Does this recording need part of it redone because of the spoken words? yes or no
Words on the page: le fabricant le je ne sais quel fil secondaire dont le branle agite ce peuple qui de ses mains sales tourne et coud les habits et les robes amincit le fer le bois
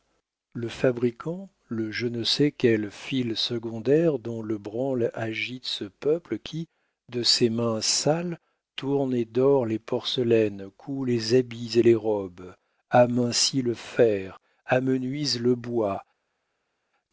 yes